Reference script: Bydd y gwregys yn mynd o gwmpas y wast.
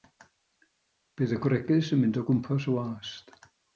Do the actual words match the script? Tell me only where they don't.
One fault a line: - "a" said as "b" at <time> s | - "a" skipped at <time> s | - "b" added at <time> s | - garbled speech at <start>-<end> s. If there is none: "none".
none